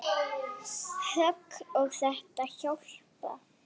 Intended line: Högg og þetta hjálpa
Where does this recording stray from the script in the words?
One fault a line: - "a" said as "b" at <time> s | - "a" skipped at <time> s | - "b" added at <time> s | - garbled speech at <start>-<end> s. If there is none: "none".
none